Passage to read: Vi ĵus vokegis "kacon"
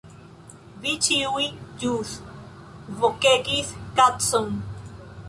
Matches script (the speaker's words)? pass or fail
fail